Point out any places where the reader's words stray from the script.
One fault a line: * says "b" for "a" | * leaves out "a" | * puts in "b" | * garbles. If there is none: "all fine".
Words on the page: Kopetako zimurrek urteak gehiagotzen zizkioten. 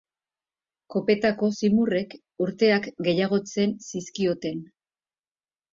all fine